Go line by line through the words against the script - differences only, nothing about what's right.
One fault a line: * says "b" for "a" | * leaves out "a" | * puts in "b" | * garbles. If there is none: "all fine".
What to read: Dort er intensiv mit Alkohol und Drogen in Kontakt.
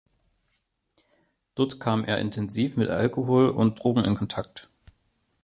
* puts in "kam"